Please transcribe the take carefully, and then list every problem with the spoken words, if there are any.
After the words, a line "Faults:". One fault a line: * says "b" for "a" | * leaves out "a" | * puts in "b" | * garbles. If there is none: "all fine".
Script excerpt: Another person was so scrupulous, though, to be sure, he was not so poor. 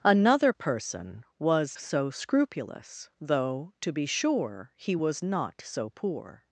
Another person was so scrupulous, though, to be sure, he was not so poor.
Faults:
all fine